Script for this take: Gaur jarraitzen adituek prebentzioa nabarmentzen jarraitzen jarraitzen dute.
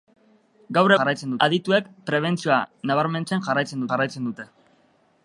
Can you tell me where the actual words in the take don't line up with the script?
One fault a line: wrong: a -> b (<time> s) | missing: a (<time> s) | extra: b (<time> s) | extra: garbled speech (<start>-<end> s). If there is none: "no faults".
no faults